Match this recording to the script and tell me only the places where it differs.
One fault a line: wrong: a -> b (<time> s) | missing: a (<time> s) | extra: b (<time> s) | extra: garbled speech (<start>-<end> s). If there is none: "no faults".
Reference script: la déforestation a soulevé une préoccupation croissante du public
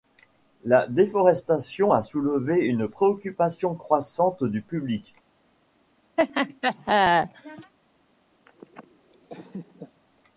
no faults